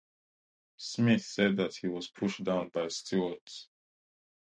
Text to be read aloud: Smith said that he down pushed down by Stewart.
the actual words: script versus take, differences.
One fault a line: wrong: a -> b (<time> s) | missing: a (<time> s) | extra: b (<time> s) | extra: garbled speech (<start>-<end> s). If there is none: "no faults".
wrong: down -> was (1.9 s)